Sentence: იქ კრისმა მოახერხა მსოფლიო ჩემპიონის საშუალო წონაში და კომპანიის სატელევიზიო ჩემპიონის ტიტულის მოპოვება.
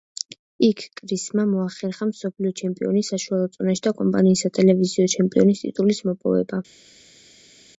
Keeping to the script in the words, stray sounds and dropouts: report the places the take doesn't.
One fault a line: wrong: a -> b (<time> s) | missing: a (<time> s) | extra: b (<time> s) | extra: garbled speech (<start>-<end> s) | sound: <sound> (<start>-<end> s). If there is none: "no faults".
no faults